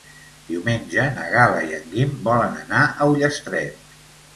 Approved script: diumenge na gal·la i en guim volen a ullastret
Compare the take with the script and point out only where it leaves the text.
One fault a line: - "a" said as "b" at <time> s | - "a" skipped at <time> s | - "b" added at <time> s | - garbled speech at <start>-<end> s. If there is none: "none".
- "anar" added at 2.7 s